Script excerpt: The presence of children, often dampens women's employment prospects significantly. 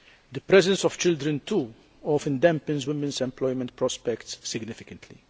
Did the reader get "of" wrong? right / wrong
right